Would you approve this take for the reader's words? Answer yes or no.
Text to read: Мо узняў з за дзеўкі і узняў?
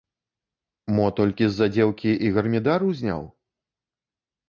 no